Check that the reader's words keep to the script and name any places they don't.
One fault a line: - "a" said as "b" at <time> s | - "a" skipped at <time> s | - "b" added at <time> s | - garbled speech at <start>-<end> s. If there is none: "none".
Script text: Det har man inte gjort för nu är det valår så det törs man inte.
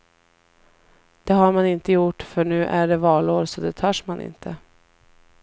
none